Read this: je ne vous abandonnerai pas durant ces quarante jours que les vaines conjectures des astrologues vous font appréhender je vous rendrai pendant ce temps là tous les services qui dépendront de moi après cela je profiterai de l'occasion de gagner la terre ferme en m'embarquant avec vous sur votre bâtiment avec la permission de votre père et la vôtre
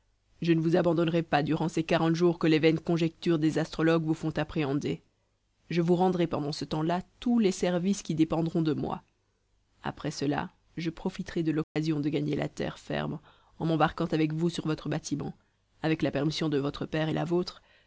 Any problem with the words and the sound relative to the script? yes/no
yes